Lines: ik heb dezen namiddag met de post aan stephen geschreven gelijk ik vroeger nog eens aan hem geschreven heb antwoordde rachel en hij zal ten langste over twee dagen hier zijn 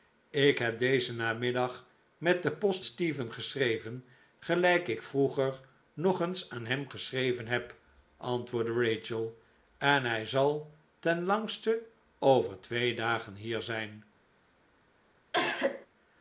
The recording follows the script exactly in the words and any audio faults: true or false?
false